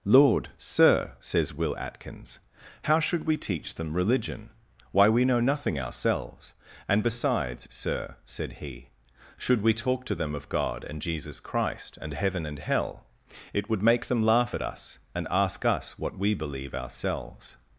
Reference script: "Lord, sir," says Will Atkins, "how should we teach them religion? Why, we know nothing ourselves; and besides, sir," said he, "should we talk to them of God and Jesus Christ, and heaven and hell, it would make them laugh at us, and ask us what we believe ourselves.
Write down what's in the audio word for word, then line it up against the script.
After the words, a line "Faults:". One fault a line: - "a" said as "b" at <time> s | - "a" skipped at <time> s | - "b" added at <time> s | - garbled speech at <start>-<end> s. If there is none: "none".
"Lord, sir," says Will Atkins, "how should we teach them religion? Why, we know nothing ourselves; and besides, sir," said he, "should we talk to them of God and Jesus Christ, and heaven and hell, it would make them laugh at us, and ask us what we believe ourselves.
Faults:
none